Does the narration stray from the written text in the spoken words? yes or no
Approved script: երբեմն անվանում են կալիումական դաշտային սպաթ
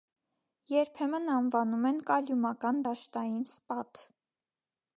no